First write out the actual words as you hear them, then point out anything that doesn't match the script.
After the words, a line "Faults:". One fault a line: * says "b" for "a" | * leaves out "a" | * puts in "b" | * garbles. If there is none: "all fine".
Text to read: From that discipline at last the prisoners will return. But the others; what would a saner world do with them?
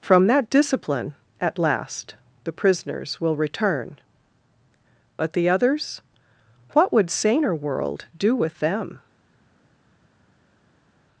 From that discipline at last the prisoners will return. But the others; what would saner world do with them?
Faults:
* leaves out "a"